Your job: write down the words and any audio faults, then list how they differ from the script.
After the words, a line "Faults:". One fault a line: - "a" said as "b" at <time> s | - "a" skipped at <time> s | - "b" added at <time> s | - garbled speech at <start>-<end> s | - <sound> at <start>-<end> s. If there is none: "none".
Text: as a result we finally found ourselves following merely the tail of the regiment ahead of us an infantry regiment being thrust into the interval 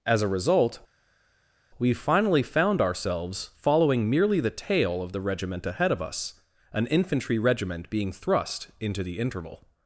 as a result we finally found ourselves following merely the tail of the regiment ahead of us an infantry regiment being thrust into the interval
Faults:
none